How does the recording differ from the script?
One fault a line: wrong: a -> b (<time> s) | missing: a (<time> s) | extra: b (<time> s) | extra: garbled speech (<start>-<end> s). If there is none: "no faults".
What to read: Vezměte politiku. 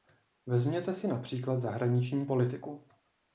extra: si například zahraniční (0.9 s)